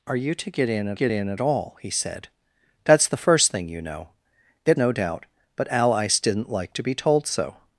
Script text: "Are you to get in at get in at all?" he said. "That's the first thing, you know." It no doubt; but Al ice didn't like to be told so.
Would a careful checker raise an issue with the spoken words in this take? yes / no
no